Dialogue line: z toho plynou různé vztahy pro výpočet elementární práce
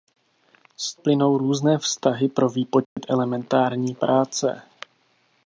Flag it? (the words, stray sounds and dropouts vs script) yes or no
yes